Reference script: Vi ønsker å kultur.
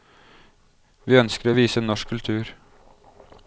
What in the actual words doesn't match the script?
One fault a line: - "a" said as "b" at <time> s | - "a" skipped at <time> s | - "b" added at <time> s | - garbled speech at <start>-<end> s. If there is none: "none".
- "vise norsk" added at 1.6 s